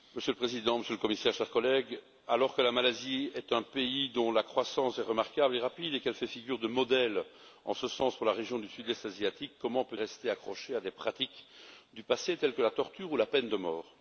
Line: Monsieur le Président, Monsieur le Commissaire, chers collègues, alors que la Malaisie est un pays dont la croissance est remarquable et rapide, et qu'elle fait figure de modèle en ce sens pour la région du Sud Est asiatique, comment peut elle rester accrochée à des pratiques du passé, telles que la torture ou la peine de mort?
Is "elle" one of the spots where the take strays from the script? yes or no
yes